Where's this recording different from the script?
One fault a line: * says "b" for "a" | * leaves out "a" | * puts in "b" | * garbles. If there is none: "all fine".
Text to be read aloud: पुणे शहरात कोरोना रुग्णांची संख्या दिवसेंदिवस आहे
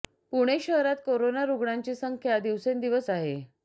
all fine